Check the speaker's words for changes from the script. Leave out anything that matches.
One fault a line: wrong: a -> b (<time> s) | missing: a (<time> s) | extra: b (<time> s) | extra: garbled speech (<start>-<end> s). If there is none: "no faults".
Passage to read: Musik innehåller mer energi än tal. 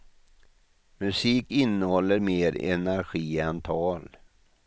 no faults